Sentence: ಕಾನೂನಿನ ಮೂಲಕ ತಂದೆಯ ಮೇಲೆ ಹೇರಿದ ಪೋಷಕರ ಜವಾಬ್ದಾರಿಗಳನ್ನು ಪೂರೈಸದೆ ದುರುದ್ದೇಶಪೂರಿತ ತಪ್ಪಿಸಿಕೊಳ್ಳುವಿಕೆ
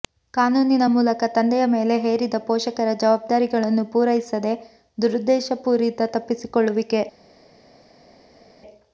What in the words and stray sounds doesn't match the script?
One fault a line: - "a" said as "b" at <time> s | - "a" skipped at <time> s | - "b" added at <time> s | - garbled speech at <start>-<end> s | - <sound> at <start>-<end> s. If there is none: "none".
none